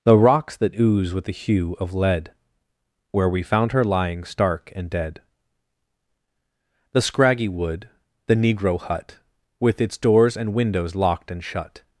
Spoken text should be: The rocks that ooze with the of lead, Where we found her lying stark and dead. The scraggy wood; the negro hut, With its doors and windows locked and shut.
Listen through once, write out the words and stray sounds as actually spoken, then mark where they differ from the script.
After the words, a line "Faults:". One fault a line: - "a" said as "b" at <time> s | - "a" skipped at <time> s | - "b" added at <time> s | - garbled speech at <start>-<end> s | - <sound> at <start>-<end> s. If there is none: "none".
The rocks that ooze with the hue of lead, Where we found her lying stark and dead. The scraggy wood; the negro hut, With its doors and windows locked and shut.
Faults:
- "hue" added at 1.3 s